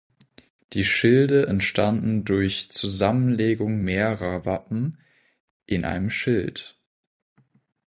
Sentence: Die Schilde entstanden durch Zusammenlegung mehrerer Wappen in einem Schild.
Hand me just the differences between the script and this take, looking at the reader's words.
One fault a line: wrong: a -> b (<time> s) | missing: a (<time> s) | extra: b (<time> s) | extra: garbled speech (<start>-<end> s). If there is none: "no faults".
no faults